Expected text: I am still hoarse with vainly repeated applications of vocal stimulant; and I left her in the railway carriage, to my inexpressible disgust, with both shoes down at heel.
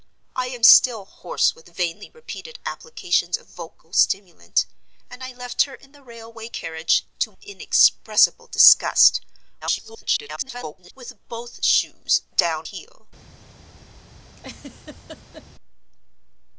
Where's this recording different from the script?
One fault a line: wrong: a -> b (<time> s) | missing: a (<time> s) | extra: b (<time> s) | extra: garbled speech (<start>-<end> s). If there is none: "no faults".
missing: my (7.3 s)
extra: garbled speech (9.6-10.9 s)
missing: at (12.7 s)